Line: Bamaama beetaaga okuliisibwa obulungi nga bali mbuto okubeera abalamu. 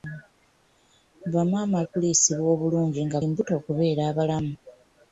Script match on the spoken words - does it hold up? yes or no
no